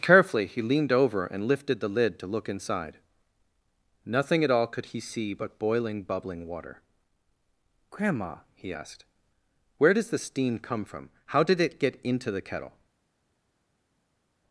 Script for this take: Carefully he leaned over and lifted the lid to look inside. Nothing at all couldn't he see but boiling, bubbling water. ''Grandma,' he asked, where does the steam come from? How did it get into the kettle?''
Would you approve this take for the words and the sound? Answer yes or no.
no